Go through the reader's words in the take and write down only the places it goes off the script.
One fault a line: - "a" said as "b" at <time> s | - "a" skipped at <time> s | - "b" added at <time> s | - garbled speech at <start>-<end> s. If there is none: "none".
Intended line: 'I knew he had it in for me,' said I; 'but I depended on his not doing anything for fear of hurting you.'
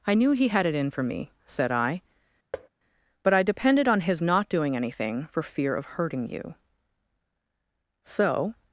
- "So" added at 8.0 s